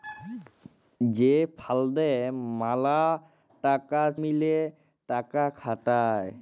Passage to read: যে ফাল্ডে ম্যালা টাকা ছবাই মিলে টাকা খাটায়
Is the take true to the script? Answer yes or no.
no